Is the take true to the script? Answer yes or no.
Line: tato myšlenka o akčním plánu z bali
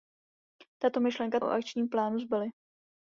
yes